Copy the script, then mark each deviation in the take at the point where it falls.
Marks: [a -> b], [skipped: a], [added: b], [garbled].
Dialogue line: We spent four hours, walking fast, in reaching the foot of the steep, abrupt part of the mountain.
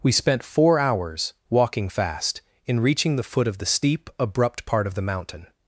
We spent four hours, walking fast, in reaching the foot of the steep, abrupt part of the mountain.